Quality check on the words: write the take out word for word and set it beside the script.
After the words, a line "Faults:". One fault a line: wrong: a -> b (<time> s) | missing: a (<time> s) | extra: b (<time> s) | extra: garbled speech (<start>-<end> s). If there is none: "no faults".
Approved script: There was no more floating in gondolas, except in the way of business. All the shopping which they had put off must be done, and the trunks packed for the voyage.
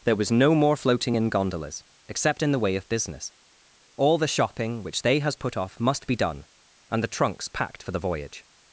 There was no more floating in gondolas, except in the way of business. All the shopping which they has put off must be done, and the trunks packed for the voyage.
Faults:
wrong: had -> has (5.2 s)